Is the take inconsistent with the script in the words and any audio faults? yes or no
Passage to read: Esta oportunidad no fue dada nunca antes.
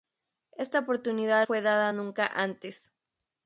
yes